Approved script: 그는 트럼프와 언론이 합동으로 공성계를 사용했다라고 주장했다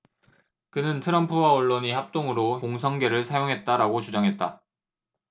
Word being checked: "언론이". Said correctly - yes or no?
yes